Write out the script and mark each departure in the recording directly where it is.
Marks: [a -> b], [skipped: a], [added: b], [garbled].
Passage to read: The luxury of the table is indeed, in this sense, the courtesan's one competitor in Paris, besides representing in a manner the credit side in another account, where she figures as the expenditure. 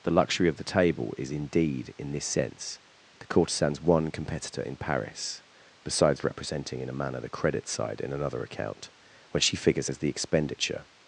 The luxury of the table is indeed, in this sense, the courtesan's one competitor in Paris, besides representing in a manner the credit side in another account, [where -> when] she figures as the expenditure.